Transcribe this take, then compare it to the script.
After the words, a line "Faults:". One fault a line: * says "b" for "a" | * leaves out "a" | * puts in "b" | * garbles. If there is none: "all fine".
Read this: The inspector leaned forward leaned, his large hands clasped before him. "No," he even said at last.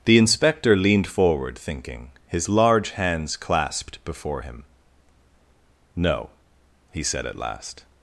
The inspector leaned forward thinking, his large hands clasped before him. "No," he said at last.
Faults:
* says "thinking" for "leaned"
* leaves out "even"